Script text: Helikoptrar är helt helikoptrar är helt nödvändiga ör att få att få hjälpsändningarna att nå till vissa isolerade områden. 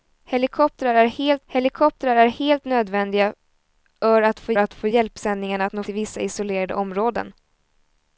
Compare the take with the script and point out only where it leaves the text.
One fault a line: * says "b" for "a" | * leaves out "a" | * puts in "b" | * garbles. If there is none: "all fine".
all fine